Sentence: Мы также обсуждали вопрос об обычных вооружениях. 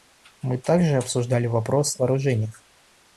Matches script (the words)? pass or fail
fail